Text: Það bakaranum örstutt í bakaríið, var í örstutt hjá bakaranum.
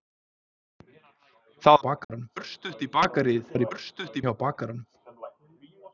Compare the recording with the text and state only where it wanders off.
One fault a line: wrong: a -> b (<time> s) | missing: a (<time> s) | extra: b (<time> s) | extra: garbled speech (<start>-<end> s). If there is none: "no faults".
no faults